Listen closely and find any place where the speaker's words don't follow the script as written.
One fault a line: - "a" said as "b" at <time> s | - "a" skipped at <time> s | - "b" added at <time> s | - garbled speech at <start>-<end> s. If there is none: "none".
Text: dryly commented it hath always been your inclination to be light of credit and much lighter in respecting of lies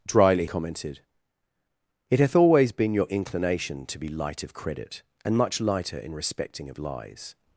none